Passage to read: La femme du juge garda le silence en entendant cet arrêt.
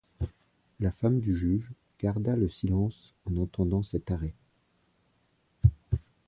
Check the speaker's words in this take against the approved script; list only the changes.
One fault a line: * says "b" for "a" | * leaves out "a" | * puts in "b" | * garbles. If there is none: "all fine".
all fine